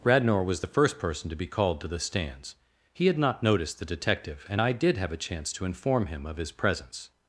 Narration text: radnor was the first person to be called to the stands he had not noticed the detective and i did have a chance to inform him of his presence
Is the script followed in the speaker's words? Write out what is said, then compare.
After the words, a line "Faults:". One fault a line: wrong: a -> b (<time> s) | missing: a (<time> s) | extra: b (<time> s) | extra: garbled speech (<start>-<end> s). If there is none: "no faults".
radnor was the first person to be called to the stands he had not noticed the detective and i did have a chance to inform him of his presence
Faults:
no faults